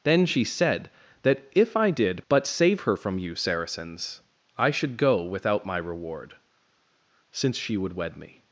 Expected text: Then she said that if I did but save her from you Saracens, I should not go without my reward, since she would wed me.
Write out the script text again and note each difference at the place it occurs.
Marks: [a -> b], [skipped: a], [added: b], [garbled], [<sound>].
Then she said that if I did but save her from you Saracens, I should [skipped: not] go without my reward, since she would wed me.